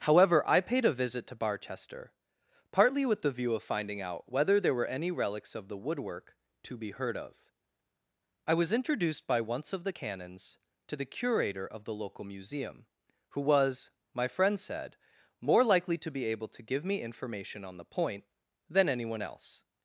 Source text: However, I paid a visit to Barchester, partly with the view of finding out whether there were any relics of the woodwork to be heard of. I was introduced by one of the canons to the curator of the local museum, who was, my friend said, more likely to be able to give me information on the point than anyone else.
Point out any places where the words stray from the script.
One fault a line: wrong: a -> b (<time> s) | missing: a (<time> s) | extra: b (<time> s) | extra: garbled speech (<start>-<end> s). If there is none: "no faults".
wrong: one -> once (9.4 s)